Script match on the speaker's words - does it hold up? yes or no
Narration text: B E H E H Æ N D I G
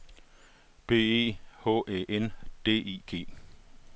no